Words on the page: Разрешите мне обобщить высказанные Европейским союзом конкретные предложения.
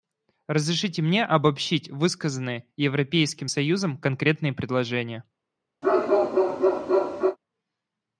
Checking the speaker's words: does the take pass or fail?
pass